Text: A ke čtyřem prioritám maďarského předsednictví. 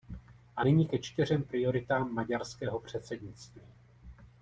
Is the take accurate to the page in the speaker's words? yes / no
no